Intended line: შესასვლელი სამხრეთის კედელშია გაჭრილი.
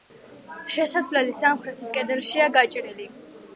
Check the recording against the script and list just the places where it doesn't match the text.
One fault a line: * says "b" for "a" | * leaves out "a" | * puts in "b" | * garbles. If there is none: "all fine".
all fine